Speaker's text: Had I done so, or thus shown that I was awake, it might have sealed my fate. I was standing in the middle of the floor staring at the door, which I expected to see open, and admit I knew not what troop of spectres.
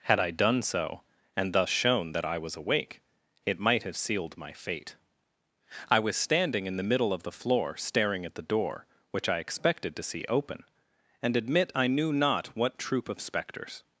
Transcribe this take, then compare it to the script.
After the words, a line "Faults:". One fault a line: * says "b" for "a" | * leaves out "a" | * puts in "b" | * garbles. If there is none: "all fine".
Had I done so, and thus shown that I was awake, it might have sealed my fate. I was standing in the middle of the floor staring at the door, which I expected to see open, and admit I knew not what troop of spectres.
Faults:
* says "and" for "or"